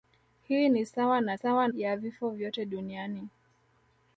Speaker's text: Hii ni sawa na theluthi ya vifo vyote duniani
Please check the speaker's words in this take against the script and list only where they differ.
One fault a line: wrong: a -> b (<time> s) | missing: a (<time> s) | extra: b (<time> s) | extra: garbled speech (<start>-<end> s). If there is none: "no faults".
wrong: theluthi -> sawa (1.3 s)